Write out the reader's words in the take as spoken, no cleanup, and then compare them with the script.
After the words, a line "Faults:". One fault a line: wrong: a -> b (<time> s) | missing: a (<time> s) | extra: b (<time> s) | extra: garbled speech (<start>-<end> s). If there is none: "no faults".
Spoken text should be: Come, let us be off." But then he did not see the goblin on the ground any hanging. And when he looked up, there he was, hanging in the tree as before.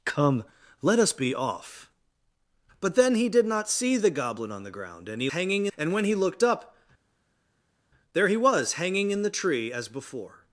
Come, let us be off." But then he did not see the goblin on the ground any hanging. And when he looked up, there he was, hanging in the tree as before.
Faults:
no faults